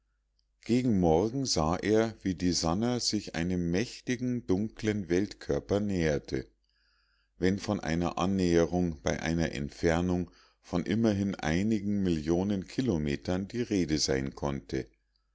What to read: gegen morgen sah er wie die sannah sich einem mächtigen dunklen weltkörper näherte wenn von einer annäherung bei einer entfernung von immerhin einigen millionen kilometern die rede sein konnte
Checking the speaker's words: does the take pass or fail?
pass